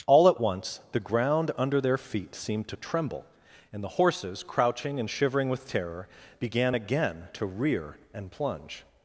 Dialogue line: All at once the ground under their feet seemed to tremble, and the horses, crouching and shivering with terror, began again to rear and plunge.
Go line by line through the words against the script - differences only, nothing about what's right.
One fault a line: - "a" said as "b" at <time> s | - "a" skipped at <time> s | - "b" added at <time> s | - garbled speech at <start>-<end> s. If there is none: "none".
none